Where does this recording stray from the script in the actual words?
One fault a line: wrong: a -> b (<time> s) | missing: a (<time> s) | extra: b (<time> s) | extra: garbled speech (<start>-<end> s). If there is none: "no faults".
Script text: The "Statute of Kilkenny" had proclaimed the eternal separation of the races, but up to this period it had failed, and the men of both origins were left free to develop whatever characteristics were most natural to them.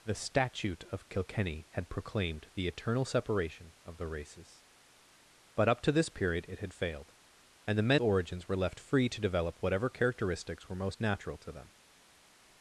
missing: of both (8.0 s)